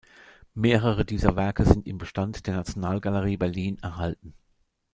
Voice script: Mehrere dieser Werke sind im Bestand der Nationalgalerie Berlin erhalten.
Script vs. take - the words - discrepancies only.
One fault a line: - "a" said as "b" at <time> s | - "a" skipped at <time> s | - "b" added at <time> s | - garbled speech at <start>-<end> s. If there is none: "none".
none